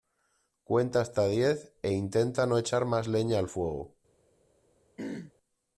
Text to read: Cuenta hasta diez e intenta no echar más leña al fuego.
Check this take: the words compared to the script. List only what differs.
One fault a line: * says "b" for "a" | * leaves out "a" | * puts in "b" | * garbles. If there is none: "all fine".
all fine